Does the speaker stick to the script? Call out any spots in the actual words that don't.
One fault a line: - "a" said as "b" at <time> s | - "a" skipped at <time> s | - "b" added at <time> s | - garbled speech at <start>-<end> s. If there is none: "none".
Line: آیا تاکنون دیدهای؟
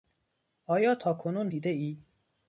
none